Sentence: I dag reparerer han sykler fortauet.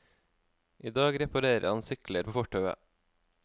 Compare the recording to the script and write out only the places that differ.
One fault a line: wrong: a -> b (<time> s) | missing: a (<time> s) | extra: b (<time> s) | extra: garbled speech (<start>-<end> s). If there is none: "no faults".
extra: på (2.3 s)